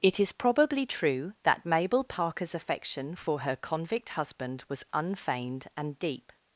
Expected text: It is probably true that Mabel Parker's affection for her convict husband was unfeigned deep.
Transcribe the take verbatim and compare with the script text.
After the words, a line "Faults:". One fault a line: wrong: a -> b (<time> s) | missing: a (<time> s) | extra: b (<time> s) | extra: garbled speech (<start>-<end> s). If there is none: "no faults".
It is probably true that Mabel Parker's affection for her convict husband was unfeigned and deep.
Faults:
extra: and (5.7 s)